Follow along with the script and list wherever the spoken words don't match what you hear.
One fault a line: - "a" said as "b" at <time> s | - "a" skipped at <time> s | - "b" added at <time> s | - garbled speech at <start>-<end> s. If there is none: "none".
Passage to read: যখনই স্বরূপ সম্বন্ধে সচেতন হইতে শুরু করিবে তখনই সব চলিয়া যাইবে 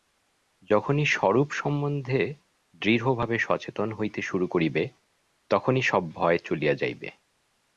- "দৃঢ়ভাবে" added at 2.8 s
- "ভয়" added at 6.1 s